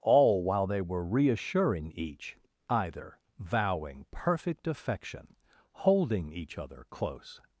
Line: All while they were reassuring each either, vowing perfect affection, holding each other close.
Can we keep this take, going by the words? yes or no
yes